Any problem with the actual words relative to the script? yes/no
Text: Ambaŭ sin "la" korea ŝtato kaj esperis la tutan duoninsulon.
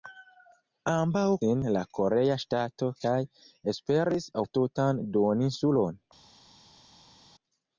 no